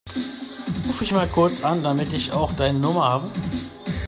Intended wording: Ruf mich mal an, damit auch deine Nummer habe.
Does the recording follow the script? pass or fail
fail